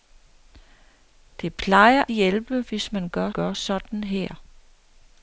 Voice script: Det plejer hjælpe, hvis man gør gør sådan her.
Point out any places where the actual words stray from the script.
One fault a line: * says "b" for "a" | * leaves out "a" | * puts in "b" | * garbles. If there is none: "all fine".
all fine